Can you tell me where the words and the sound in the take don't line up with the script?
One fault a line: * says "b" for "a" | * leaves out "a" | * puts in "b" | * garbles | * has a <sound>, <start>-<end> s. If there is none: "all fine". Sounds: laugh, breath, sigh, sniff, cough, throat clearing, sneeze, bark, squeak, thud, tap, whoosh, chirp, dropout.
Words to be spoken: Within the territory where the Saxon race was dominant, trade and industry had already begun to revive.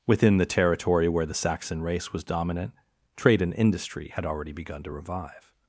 all fine